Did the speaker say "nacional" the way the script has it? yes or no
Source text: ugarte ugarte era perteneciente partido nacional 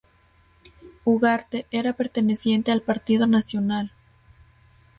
yes